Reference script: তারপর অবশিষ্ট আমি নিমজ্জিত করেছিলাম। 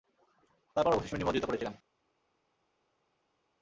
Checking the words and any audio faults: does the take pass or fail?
pass